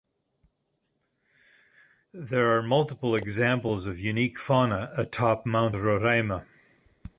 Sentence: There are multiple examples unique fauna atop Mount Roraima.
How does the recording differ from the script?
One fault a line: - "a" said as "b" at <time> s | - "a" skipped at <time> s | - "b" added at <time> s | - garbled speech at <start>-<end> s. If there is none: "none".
- "of" added at 3.9 s